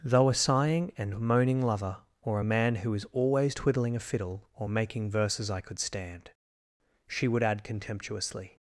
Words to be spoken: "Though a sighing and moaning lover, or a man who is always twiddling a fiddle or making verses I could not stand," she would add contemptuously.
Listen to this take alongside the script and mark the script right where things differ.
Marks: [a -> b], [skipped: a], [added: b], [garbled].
"Though a sighing and moaning lover, or a man who is always twiddling a fiddle or making verses I could [skipped: not] stand," she would add contemptuously.